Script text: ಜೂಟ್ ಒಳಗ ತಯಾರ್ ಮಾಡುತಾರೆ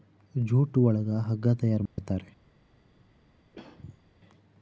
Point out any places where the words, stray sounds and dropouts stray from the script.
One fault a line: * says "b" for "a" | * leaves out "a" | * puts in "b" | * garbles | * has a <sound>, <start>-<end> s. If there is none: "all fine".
* puts in "ಹಗ್ಗ"
* has a dropout, 1.9-2.0 s
* has a throat clearing, 3.5-4.0 s